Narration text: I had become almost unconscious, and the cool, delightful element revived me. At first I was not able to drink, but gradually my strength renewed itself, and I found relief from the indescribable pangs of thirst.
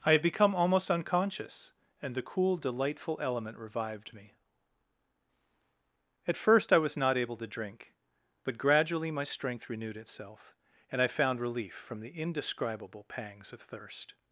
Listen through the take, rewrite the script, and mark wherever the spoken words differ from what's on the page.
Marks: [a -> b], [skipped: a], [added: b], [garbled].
I had become almost unconscious, and the cool, delightful element revived me. At first I was not able to drink, but gradually my strength renewed itself, and I found relief from the indescribable pangs of thirst.